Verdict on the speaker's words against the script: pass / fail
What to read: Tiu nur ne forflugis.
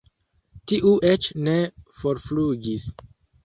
fail